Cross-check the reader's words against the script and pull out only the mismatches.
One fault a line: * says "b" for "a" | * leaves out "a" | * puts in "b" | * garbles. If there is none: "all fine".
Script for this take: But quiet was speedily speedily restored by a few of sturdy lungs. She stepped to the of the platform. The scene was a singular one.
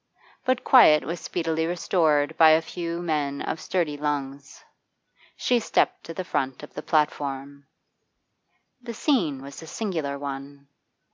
* leaves out "speedily"
* puts in "men"
* puts in "front"